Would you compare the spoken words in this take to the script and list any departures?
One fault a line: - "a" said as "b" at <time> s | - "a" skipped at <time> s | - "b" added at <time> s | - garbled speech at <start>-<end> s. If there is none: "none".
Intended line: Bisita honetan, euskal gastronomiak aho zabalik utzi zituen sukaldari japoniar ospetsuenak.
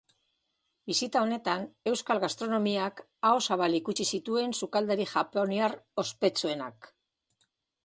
none